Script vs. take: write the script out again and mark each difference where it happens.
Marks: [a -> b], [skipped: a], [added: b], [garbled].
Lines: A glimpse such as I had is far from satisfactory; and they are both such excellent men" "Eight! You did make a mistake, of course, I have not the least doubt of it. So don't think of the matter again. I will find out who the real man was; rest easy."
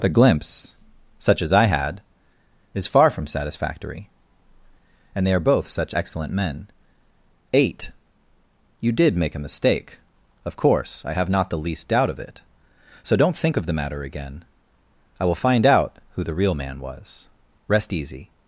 [A -> The] glimpse such as I had is far from satisfactory; and they are both such excellent men" "Eight! You did make a mistake, of course, I have not the least doubt of it. So don't think of the matter again. I will find out who the real man was; rest easy."